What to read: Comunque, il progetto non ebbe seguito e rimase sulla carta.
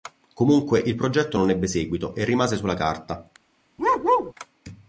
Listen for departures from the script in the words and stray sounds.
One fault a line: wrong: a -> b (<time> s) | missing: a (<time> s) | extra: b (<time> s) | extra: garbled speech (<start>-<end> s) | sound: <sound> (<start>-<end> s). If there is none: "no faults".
sound: bark (3.8-4.3 s)